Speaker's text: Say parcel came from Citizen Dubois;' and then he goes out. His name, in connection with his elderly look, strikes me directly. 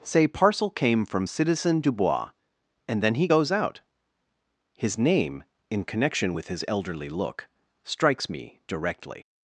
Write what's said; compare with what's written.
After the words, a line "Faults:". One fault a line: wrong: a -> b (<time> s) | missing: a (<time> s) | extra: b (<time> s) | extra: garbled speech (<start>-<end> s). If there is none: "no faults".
Say parcel came from Citizen Dubois;' and then he goes out. His name, in connection with his elderly look, strikes me directly.
Faults:
no faults